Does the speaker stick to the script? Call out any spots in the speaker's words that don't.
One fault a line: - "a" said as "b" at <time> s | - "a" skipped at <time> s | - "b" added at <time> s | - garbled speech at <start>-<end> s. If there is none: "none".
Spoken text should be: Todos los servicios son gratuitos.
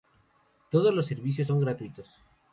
none